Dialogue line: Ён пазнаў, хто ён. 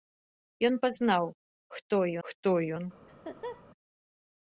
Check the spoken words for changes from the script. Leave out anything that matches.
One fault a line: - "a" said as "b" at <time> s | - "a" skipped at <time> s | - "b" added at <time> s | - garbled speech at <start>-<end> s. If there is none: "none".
- "хто" added at 2.3 s